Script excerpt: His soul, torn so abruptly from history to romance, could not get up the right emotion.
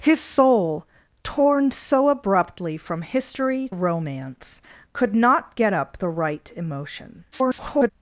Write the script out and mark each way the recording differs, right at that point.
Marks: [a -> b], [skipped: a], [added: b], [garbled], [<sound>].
His soul, torn so abruptly from history [skipped: to] romance, could not get up the right emotion. [garbled]